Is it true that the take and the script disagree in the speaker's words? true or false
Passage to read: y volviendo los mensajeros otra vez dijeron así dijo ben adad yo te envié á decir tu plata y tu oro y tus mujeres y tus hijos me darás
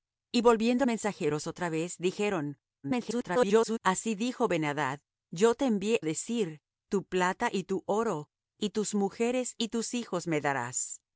true